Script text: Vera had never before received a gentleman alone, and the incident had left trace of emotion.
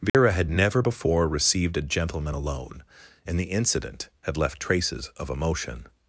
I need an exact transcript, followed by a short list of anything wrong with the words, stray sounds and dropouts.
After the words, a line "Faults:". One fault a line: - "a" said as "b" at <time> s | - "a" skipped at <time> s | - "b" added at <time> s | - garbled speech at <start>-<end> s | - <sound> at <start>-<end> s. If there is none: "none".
Vera had never before received a gentleman alone, and the incident had left traces of emotion.
Faults:
- dropout at 0.1-0.1 s
- "trace" said as "traces" at 4.6 s